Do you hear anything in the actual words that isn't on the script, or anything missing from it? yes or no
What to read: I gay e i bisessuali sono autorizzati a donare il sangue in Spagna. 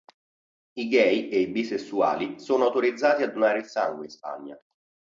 no